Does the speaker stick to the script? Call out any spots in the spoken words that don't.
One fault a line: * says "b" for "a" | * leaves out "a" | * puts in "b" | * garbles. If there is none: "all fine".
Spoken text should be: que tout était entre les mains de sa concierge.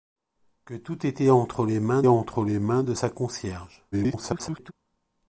* puts in "entre les mains"
* garbles